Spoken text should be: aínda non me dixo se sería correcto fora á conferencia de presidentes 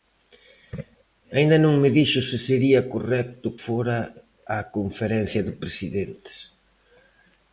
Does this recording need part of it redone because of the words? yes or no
no